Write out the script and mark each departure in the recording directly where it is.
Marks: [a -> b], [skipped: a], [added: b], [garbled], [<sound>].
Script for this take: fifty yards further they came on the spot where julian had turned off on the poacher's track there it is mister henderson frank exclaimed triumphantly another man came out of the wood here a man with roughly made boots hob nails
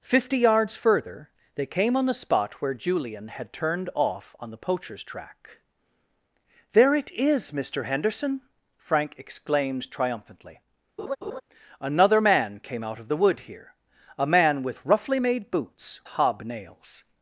fifty yards further they came on the spot where julian had turned off on the poacher's track there it is mister henderson frank exclaimed triumphantly [laugh] another man came out of the wood here a man with roughly made boots hob nails